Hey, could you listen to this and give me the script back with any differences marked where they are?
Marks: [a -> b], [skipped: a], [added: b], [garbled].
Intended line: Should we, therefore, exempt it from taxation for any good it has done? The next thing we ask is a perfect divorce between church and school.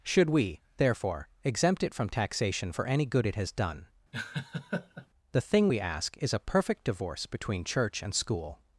Should we, therefore, exempt it from taxation for any good it has done? The [skipped: next] thing we ask is a perfect divorce between church and school.